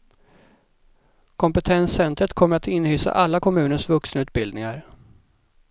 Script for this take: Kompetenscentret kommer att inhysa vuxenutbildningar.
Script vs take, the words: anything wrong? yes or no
yes